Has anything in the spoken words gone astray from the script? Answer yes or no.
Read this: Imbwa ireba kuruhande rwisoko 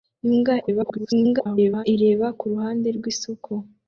yes